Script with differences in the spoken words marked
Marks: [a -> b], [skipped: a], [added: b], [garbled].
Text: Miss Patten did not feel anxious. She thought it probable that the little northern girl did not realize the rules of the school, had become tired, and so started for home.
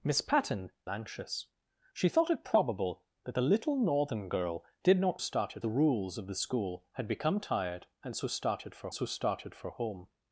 Miss Patten [skipped: did not feel] anxious. She thought it probable that the little northern girl did not [realize -> started] the rules of the school, had become tired, and so started for [added: so started for] home.